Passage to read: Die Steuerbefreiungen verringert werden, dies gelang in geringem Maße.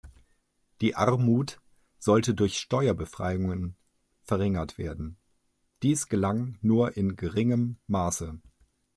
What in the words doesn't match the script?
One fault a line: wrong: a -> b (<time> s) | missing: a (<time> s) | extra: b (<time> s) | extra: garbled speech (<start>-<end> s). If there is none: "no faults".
extra: Armut sollte durch (0.9 s)
extra: nur (6.6 s)